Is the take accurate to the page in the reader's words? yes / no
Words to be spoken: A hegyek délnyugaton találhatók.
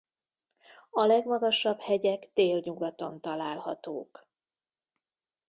no